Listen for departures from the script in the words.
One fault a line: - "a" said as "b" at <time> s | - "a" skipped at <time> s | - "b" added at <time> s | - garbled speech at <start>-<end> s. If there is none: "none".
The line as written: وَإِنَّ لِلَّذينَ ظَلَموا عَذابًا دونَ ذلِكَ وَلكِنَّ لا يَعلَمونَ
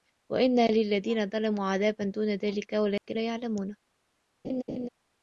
none